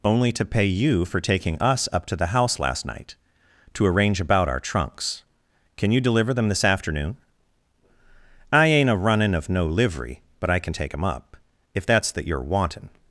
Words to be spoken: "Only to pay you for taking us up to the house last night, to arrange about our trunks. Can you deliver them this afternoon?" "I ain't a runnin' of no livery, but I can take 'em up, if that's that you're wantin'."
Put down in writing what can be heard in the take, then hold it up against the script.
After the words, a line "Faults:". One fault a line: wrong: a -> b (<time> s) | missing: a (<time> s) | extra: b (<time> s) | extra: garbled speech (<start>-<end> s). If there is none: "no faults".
"Only to pay you for taking us up to the house last night, to arrange about our trunks. Can you deliver them this afternoon?" "I ain't a runnin' of no livery, but I can take 'em up, if that's that you're wantin'."
Faults:
no faults